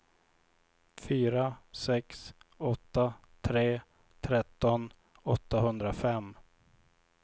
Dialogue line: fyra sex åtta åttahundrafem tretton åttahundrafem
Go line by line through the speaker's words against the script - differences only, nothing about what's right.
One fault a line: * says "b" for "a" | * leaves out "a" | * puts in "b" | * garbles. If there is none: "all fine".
* says "tre" for "åttahundrafem"